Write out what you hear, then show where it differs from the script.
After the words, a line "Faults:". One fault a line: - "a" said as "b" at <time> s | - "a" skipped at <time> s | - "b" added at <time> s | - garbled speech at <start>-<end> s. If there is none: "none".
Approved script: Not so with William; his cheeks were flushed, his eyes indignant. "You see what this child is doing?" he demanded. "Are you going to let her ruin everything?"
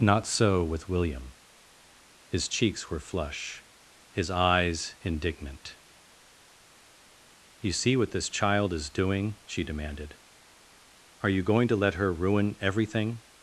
Not so with William; his cheeks were flush, his eyes indignant. "You see what this child is doing?" she demanded. "Are you going to let her ruin everything?"
Faults:
- "flushed" said as "flush" at 3.0 s
- "he" said as "she" at 9.4 s